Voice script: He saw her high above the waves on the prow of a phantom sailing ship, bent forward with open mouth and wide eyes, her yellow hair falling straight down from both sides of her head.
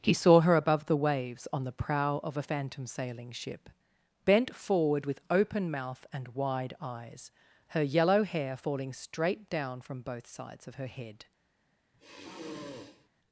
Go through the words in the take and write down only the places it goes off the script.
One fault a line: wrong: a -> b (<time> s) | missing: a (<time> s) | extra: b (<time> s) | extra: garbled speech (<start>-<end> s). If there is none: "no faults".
missing: high (0.6 s)